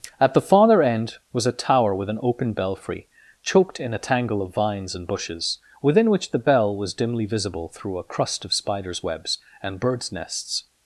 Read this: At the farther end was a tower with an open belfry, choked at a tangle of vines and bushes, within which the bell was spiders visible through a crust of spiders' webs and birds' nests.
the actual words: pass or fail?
fail